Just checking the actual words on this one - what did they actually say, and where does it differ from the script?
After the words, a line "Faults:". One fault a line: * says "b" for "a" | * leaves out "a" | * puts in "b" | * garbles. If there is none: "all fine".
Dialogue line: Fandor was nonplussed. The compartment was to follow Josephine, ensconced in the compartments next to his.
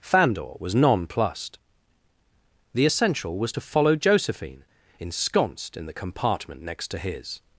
Fandor was nonplussed. The essential was to follow Josephine, ensconced in the compartment next to his.
Faults:
* says "essential" for "compartment"
* says "compartment" for "compartments"